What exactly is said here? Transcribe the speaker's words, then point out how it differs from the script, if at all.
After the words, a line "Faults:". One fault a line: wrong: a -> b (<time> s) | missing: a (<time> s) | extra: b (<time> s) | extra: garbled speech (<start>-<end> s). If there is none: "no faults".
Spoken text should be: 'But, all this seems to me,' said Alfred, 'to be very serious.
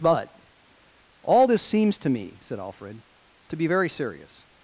'But, all this seems to me,' said Alfred, 'to be very serious.
Faults:
no faults